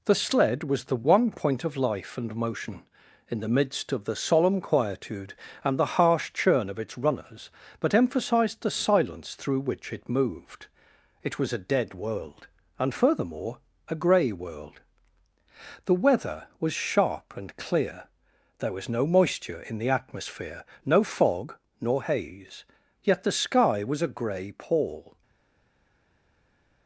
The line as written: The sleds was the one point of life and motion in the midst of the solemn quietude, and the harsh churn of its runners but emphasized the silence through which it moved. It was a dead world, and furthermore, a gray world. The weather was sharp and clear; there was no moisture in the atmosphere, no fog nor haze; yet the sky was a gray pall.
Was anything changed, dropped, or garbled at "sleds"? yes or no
yes